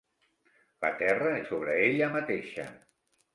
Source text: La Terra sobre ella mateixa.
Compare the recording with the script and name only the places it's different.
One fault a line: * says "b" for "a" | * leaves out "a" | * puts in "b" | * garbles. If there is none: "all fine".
all fine